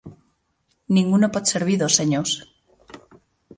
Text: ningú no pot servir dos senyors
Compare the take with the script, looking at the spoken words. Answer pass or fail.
pass